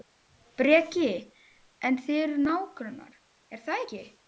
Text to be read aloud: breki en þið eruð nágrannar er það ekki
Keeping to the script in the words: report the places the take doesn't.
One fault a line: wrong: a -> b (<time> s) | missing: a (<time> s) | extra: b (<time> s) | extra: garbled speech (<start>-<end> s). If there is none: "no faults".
no faults